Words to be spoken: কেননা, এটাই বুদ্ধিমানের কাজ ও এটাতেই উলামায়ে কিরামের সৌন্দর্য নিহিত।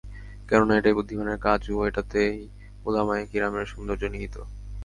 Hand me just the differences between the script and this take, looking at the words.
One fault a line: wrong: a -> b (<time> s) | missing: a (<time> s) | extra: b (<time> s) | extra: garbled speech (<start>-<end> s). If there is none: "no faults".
no faults